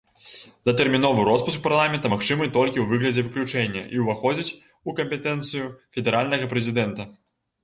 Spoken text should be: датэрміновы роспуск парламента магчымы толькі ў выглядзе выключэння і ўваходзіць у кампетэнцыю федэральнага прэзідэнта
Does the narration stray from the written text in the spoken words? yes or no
no